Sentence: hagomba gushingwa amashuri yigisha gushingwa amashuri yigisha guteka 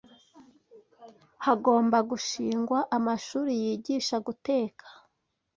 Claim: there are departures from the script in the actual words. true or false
true